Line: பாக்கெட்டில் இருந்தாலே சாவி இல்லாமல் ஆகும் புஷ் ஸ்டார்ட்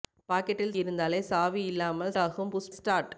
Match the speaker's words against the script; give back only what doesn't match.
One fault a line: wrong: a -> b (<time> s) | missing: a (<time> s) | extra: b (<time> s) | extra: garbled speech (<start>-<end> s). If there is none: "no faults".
no faults